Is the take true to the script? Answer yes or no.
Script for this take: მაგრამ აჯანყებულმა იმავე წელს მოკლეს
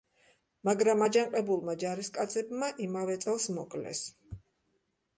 no